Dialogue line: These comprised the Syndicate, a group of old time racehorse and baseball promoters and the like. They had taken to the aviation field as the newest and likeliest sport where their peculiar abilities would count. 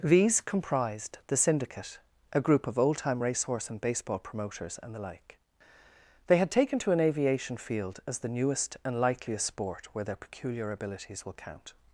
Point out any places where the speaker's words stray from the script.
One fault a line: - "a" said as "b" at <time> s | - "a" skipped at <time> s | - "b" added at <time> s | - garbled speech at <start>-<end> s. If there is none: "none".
- "the" said as "an" at 6.9 s
- "would" said as "will" at 11.3 s